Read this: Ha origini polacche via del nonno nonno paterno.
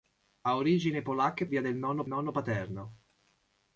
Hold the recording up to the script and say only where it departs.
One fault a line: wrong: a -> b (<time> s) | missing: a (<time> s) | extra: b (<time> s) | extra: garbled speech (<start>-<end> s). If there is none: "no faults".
no faults